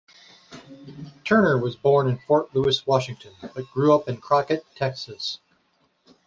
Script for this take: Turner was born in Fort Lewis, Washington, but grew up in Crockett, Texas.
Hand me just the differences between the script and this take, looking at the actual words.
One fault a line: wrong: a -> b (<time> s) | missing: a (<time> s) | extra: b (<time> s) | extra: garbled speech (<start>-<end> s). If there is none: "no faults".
no faults